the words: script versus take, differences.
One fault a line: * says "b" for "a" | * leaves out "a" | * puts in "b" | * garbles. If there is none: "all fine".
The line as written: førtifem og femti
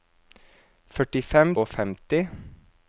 all fine